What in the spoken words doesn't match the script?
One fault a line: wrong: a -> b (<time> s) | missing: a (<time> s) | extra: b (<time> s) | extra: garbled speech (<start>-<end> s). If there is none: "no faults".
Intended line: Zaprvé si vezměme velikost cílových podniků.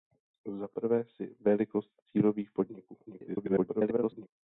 missing: vezměme (1.4 s)
extra: garbled speech (3.1-4.3 s)